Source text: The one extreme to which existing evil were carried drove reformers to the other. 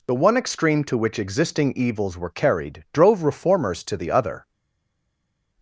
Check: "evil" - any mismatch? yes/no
yes